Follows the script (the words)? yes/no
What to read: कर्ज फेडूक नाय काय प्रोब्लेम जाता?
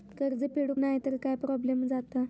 no